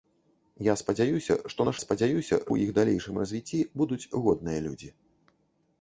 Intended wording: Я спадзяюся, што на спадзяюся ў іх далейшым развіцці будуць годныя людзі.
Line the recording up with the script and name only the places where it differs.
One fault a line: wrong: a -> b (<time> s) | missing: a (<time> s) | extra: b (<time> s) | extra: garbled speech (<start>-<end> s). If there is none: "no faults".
no faults